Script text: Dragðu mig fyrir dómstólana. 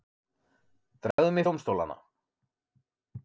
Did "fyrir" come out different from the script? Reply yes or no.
yes